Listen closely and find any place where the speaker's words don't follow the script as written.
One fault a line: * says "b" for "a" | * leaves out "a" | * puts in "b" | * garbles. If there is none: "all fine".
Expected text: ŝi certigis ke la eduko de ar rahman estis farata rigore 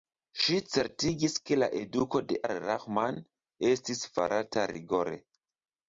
all fine